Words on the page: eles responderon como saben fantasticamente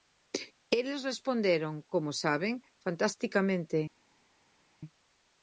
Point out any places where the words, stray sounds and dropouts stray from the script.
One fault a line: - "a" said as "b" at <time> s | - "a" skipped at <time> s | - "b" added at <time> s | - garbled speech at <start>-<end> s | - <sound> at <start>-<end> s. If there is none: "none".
none